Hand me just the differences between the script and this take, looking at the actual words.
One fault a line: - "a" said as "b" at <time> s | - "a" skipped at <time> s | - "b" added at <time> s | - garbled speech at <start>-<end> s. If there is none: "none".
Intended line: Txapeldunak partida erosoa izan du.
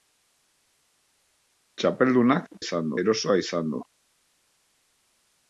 - "partida" said as "izan" at 2.6 s